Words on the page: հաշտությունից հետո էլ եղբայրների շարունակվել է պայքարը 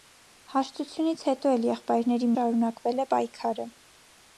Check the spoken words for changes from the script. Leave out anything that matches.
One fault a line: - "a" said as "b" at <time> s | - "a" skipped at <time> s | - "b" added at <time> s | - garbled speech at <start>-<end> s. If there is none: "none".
none